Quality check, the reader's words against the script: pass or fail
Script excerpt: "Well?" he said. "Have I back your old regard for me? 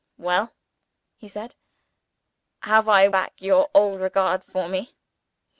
pass